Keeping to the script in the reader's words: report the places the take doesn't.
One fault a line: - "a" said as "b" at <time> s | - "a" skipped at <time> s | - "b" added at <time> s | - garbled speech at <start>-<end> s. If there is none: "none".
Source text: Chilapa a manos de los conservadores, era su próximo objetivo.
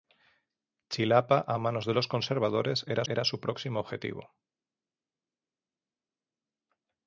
- "era" added at 3.1 s